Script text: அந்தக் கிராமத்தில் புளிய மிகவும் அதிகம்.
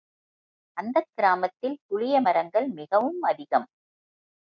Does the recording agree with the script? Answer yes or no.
no